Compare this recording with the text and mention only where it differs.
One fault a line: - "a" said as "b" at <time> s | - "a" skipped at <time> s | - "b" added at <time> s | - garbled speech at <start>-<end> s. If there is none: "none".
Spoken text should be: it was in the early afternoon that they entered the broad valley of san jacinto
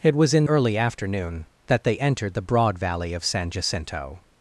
- "the" skipped at 0.5 s